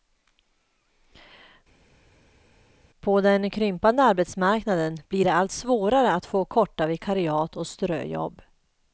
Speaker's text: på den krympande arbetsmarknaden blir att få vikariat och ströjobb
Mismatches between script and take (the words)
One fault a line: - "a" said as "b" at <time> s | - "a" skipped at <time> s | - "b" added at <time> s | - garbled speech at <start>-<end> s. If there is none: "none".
- "det allt svårare" added at 5.2 s
- "korta" added at 6.5 s